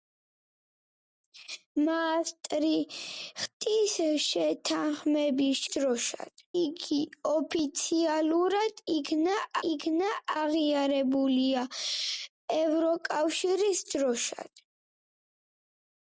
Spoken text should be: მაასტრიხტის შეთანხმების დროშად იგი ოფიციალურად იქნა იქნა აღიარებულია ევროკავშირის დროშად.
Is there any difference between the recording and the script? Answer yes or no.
no